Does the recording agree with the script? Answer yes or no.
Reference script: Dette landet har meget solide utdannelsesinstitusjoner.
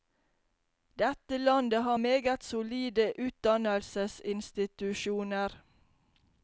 yes